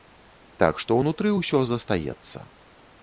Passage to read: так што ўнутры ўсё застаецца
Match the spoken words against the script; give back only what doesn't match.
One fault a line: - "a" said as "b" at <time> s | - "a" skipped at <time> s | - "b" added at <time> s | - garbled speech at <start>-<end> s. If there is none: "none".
none